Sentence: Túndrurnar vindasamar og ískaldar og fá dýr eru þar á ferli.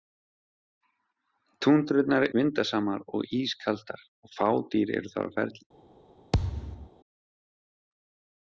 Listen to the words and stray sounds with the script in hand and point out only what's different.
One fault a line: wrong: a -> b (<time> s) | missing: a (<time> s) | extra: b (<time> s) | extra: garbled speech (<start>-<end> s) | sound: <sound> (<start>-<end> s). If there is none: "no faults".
sound: thud (6.3-6.9 s)